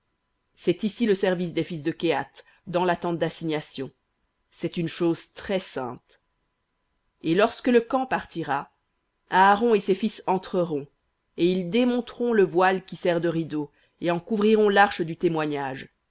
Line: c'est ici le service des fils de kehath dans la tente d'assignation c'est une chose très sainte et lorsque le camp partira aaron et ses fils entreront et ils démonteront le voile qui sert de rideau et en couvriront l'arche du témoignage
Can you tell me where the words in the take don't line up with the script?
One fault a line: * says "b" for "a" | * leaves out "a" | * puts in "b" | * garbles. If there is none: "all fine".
all fine